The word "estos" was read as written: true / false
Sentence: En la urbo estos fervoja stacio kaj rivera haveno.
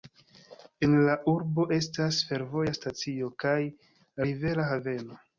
false